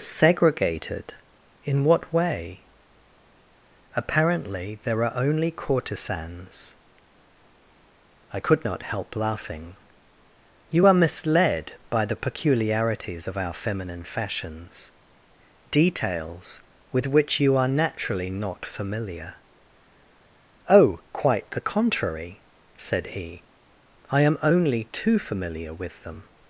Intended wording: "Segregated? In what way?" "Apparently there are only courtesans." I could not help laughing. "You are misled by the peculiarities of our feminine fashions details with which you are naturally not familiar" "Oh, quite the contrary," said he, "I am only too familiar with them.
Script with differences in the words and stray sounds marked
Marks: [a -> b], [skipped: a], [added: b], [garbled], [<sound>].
"Segregated? In what way?" "Apparently there are only courtesans." I could not help laughing. "You are misled by the peculiarities of our feminine fashions details with which you are naturally not familiar" "Oh, quite the contrary," said he, "I am only too familiar with them.